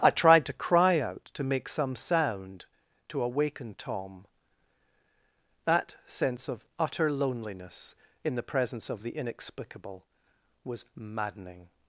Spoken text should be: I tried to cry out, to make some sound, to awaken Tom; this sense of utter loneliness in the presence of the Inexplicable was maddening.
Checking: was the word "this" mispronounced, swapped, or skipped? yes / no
yes